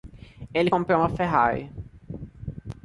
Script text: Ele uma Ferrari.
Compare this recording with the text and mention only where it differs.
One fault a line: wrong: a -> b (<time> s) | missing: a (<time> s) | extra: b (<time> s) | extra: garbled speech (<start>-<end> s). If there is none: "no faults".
extra: comprou (0.6 s)